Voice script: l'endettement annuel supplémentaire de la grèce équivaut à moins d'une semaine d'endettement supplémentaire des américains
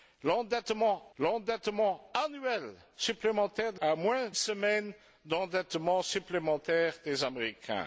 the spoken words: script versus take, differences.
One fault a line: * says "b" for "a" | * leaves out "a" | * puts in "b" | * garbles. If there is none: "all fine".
* puts in "l'endettement"
* leaves out "la grèce équivaut"
* leaves out "d'une"